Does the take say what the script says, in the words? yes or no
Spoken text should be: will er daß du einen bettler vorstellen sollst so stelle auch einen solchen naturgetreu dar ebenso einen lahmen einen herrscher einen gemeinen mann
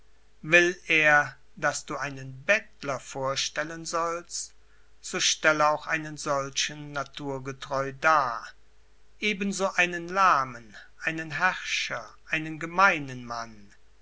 yes